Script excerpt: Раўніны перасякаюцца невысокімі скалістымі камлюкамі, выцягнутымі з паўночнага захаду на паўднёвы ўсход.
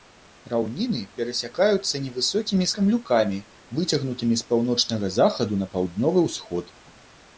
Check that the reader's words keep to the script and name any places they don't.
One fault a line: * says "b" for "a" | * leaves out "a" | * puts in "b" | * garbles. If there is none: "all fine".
* leaves out "скалістымі"